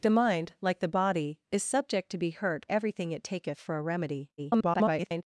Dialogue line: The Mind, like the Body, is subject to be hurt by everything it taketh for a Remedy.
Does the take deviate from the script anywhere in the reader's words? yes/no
yes